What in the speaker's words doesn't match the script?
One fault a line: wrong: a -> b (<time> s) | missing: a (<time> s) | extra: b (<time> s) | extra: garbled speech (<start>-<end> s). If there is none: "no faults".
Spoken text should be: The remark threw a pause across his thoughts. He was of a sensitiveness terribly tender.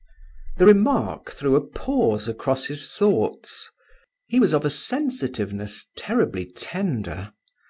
no faults